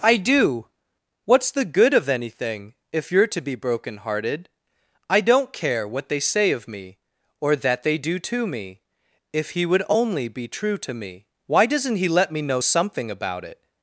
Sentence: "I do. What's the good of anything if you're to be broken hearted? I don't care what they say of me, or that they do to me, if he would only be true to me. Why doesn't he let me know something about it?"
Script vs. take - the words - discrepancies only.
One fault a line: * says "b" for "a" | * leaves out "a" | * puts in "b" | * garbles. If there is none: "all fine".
all fine